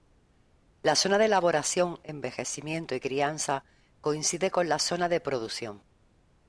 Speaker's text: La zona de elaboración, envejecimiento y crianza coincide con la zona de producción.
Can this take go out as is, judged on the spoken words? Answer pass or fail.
pass